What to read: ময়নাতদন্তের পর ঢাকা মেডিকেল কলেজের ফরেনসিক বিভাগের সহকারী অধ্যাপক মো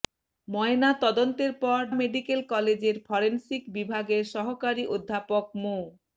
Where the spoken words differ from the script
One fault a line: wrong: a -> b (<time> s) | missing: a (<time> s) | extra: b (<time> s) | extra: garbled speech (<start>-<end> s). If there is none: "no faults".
missing: ঢাকা (1.8 s)